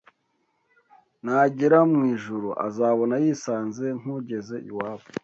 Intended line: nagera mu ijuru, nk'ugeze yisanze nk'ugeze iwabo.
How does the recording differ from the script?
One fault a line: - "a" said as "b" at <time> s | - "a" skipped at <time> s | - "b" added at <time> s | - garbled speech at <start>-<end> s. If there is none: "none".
- "nk'ugeze" said as "azabona" at 2.7 s